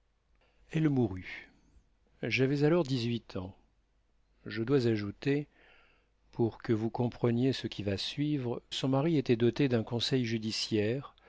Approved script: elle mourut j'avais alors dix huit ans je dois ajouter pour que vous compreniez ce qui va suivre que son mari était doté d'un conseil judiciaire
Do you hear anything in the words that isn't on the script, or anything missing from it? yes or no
yes